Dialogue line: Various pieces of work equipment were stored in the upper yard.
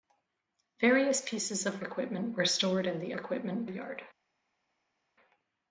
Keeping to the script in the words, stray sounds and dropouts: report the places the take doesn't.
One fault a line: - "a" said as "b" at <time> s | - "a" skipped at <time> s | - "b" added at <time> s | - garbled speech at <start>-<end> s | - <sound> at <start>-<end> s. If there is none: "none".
- "work" skipped at 1.8 s
- "upper" said as "equipment" at 3.2 s